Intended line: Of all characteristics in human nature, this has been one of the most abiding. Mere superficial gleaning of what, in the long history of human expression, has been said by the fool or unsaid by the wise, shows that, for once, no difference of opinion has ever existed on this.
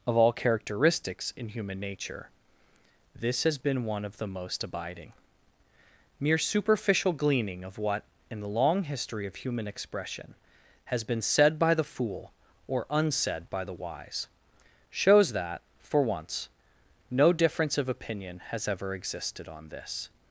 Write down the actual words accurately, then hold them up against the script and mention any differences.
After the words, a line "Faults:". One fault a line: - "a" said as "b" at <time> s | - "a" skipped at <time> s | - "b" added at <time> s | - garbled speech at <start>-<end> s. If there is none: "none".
Of all characteristics in human nature, this has been one of the most abiding. Mere superficial gleaning of what, in the long history of human expression, has been said by the fool or unsaid by the wise, shows that, for once, no difference of opinion has ever existed on this.
Faults:
none